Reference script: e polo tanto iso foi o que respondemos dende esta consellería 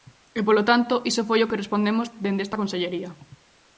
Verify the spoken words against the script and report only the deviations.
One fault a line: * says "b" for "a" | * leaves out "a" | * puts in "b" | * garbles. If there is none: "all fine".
all fine